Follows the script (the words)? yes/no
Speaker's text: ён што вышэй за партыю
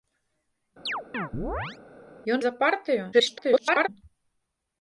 no